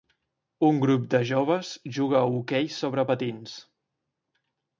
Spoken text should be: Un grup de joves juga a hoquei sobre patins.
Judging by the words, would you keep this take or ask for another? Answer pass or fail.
pass